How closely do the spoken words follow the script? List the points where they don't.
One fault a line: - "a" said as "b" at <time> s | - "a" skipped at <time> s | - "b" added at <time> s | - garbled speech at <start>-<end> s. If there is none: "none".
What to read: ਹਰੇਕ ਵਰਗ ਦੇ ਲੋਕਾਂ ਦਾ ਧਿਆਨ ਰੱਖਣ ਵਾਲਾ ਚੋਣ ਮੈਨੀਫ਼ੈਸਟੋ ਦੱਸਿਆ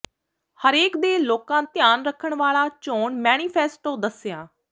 - "ਵਰਗ" skipped at 1.0 s
- "ਦਾ" skipped at 1.6 s